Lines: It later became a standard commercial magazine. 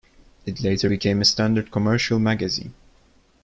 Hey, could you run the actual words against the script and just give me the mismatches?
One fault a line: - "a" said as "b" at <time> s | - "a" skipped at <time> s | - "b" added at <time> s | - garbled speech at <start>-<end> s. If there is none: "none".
none